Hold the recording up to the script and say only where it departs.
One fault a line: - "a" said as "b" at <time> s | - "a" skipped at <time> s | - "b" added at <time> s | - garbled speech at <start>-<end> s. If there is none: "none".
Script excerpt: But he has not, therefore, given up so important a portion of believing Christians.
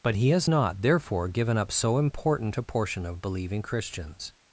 none